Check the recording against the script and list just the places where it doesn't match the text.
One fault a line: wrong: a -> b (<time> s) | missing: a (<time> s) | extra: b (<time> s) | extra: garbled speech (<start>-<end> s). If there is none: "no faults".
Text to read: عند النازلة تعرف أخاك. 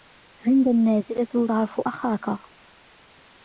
no faults